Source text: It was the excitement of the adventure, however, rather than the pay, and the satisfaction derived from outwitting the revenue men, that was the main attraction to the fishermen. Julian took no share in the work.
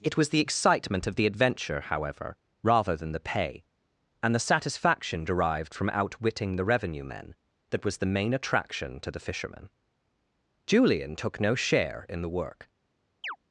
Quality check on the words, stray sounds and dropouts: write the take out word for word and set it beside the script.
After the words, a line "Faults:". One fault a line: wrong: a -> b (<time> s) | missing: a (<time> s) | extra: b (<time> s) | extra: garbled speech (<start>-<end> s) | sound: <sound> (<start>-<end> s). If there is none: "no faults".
It was the excitement of the adventure, however, rather than the pay, and the satisfaction derived from outwitting the revenue men, that was the main attraction to the fishermen. Julian took no share in the work.
Faults:
sound: chirp (13.2-13.4 s)